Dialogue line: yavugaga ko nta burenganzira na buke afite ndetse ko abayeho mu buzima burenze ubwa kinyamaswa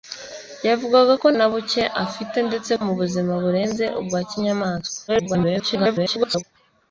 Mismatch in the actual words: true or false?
true